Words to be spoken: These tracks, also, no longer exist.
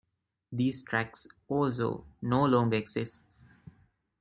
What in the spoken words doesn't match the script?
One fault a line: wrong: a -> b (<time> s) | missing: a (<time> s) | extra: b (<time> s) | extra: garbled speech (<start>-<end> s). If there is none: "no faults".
no faults